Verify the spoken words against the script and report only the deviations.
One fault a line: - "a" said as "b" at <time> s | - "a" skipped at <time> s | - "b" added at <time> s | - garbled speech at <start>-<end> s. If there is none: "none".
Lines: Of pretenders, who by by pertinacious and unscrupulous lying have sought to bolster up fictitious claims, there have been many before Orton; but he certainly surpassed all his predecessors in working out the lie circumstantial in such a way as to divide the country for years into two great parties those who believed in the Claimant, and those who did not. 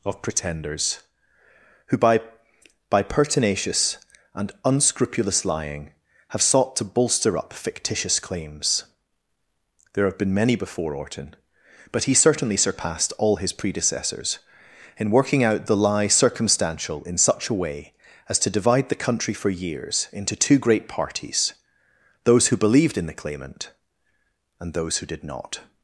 none